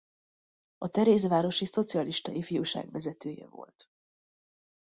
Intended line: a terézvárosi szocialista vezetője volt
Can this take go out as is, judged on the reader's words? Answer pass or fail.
fail